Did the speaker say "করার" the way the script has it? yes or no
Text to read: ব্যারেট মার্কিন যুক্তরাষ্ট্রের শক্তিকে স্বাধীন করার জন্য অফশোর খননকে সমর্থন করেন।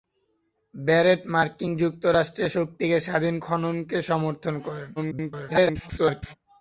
no